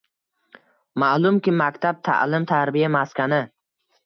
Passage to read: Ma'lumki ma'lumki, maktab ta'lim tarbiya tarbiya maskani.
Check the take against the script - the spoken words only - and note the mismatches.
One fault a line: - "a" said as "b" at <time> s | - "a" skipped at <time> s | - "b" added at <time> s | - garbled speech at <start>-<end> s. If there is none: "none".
- "ma'lumki" skipped at 1.5 s
- "tarbiya" skipped at 2.9 s